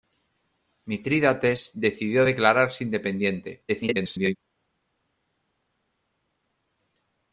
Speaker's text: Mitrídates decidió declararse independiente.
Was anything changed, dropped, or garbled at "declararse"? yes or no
no